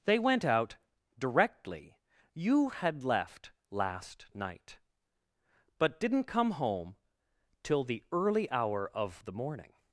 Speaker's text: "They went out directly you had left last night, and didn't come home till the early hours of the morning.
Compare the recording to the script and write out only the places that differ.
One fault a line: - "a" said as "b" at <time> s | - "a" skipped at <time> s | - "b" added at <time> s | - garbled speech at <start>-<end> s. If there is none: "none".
- "and" said as "but" at 5.8 s
- "hours" said as "hour" at 8.5 s